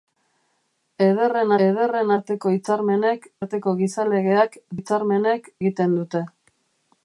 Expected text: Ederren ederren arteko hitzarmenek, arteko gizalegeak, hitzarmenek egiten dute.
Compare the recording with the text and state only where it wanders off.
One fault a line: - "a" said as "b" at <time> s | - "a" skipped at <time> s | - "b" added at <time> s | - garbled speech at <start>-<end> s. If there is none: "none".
none